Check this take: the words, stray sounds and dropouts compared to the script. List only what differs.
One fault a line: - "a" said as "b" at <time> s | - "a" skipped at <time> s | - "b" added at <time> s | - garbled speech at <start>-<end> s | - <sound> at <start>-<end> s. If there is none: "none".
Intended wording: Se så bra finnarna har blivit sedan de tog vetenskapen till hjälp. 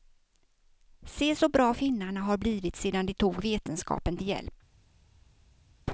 none